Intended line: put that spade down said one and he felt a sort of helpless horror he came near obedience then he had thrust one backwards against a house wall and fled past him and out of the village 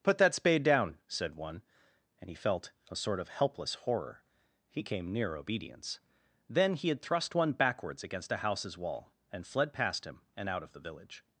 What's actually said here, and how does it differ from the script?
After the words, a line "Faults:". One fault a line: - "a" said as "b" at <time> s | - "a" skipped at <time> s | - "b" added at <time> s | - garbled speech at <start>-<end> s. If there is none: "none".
put that spade down said one and he felt a sort of helpless horror he came near obedience then he had thrust one backwards against a houses wall and fled past him and out of the village
Faults:
- "house" said as "houses" at 8.4 s